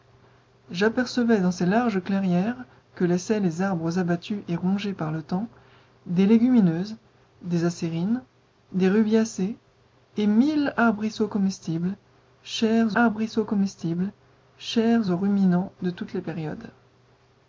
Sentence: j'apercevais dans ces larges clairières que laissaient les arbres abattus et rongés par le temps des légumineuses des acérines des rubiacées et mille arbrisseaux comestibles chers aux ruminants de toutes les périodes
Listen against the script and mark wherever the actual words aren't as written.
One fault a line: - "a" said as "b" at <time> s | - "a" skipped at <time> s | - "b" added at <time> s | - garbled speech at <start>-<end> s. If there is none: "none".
- "arbrisseaux comestibles chers" added at 12.9 s